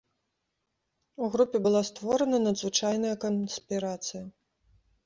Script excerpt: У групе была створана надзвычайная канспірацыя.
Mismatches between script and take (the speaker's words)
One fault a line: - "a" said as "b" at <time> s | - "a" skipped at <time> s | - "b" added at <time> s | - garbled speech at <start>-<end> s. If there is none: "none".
none